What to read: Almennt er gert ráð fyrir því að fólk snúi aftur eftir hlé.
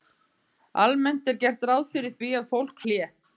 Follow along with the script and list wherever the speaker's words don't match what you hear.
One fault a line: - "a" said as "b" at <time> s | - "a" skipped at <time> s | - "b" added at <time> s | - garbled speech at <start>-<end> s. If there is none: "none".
- "snúi aftur eftir" skipped at 2.8 s